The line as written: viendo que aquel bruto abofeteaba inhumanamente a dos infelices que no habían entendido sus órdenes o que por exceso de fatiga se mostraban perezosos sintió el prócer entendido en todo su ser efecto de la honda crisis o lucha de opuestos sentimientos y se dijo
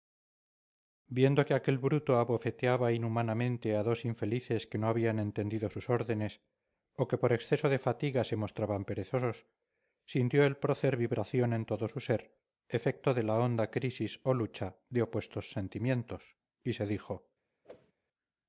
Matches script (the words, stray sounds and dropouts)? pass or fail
fail